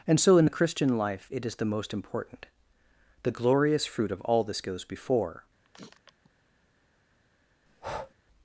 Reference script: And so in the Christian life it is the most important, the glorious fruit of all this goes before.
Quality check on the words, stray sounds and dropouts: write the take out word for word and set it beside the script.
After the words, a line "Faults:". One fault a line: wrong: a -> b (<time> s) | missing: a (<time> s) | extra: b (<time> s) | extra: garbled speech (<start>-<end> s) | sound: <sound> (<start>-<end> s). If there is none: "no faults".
And so in the Christian life it is the most important, the glorious fruit of all this goes before.
Faults:
sound: sniff (5.6-6.3 s)
sound: breath (7.7-8.1 s)